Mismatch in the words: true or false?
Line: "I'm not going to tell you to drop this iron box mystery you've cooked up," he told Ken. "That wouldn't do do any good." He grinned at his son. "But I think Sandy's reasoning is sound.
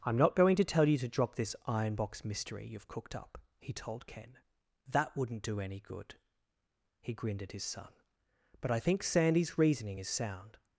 true